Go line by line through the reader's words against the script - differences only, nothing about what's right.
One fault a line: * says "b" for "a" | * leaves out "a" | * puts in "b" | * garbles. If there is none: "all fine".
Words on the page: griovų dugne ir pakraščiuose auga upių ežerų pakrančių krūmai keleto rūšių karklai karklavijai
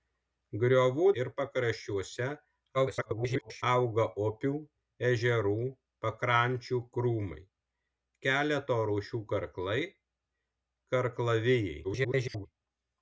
* leaves out "dugne"
* garbles
* garbles